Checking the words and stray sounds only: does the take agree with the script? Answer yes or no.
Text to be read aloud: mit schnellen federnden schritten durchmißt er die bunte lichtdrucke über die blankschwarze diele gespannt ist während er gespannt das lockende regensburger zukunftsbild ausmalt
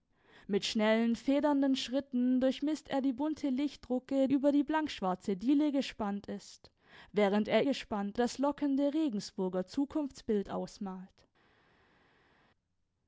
yes